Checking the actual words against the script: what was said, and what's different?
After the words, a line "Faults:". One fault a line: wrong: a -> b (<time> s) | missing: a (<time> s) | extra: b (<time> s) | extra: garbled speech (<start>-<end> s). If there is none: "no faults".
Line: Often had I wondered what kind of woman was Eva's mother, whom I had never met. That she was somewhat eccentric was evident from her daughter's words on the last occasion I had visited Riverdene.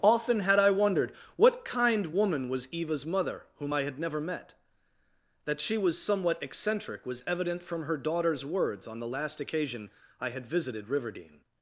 Often had I wondered what kind woman was Eva's mother, whom I had never met. That she was somewhat eccentric was evident from her daughter's words on the last occasion I had visited Riverdene.
Faults:
missing: of (2.1 s)